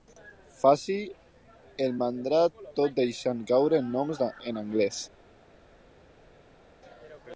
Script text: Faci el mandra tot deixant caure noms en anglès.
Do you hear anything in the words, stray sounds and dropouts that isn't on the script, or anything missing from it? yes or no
no